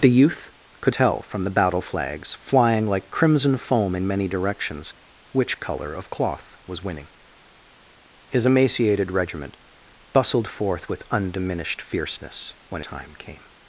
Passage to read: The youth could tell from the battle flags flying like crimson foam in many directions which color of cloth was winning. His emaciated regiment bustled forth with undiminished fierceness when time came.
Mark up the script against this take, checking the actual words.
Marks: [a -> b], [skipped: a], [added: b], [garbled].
The youth could tell from the battle flags flying like crimson foam in many directions which color of cloth was winning. His emaciated regiment bustled forth with undiminished fierceness when time came.